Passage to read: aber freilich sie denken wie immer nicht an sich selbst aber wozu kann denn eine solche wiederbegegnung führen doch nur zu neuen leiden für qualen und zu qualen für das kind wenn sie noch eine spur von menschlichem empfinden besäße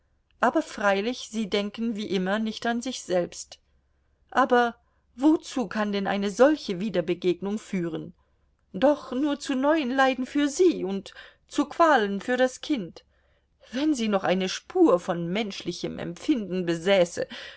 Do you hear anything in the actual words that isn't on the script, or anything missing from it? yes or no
yes